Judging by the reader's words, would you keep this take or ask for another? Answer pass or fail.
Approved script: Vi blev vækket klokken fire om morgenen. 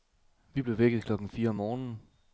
pass